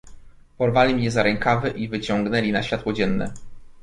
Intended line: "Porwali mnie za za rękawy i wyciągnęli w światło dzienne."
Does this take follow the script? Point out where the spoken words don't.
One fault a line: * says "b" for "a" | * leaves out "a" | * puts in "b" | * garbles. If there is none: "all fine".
* leaves out "za"
* says "na" for "w"